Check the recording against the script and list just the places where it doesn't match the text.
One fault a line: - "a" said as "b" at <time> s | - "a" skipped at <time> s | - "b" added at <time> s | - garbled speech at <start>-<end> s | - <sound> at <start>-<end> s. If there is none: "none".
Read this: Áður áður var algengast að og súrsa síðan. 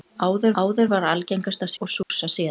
- dropout at 2.0-2.1 s